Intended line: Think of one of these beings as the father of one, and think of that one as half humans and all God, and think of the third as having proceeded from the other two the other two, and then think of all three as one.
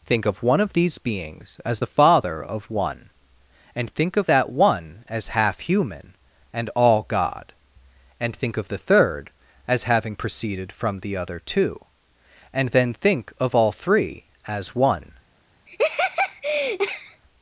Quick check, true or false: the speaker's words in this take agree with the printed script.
false